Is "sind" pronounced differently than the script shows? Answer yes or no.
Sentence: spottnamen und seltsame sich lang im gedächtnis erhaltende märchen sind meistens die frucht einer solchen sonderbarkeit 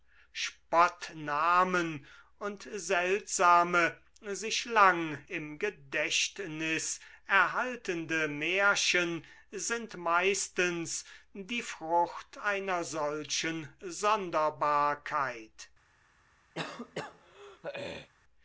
no